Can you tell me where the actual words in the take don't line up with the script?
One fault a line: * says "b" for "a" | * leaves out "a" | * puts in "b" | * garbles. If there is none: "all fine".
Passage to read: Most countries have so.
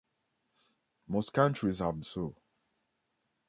all fine